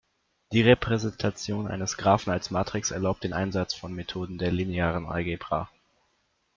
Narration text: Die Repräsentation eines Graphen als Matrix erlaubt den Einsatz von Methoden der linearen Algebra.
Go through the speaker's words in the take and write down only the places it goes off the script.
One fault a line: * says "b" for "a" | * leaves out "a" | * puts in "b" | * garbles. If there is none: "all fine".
all fine